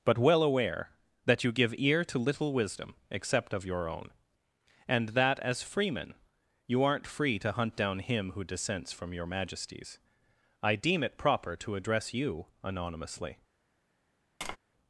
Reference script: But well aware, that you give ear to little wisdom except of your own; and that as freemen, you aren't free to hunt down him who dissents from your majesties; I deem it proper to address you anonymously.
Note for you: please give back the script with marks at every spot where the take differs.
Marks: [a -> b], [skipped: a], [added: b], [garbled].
But well aware, that you give ear to little wisdom except of your own; and that as freemen, you aren't free to hunt down him who dissents from your majesties; I deem it proper to address you anonymously.